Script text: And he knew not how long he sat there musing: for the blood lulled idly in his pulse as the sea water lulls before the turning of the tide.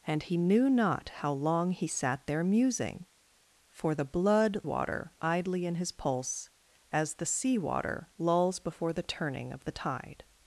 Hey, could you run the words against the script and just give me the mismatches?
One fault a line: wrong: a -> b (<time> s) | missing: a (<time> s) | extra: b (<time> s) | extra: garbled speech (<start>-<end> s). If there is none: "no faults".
wrong: lulled -> water (4.6 s)